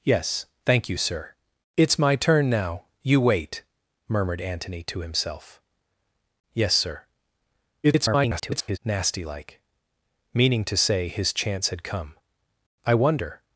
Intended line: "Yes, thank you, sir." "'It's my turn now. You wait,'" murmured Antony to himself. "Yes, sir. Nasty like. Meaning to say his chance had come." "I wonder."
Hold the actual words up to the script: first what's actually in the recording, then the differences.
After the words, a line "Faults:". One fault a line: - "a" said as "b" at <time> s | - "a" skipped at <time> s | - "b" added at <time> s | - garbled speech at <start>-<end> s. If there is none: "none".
"Yes, thank you, sir." "'It's my turn now. You wait,'" murmured Antony to himself. "Yes, sir. [garbled] Nasty like. Meaning to say his chance had come." "I wonder."
Faults:
- garbled speech at 7.8-8.8 s